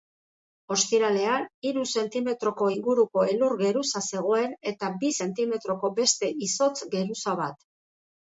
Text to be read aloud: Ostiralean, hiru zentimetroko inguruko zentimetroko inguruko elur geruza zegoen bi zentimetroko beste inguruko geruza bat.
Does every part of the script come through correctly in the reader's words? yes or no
no